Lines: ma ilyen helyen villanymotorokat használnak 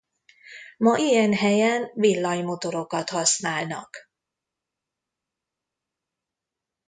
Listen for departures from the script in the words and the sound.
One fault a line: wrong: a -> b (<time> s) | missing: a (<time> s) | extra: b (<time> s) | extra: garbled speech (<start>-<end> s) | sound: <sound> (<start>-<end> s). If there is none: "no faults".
no faults